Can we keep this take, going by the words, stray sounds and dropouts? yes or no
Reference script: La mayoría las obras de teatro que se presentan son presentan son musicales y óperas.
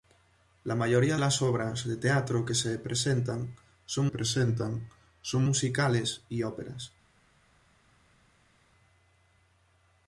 yes